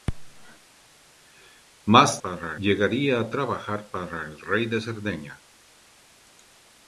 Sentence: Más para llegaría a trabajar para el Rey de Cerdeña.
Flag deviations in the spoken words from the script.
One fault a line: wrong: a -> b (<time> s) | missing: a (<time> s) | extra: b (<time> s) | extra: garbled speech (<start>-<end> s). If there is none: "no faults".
no faults